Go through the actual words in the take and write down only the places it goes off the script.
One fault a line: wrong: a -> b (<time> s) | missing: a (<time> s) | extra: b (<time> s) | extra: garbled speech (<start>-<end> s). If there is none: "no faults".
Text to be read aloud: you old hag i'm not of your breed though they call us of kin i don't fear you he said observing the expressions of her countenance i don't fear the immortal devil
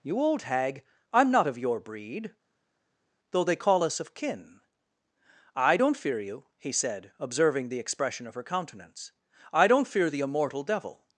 wrong: expressions -> expression (7.8 s)